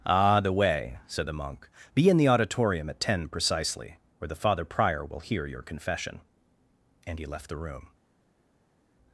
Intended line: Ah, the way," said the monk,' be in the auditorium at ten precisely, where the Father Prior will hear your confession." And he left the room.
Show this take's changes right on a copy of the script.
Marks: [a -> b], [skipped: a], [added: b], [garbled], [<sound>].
Ah, the way," said the monk,' be in the auditorium at ten precisely, where the Father Prior will hear your confession." And he left the room.